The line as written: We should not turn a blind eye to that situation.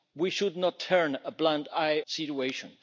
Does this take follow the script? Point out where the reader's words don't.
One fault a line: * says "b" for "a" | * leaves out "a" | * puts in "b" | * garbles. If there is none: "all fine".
* leaves out "to that"